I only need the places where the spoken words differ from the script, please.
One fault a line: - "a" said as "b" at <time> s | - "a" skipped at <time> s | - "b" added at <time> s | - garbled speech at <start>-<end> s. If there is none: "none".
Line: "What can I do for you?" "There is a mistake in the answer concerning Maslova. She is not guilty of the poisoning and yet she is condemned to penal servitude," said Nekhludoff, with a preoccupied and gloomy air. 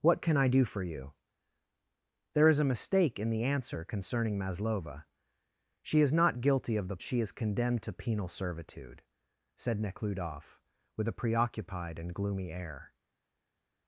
- "poisoning and yet" skipped at 7.0 s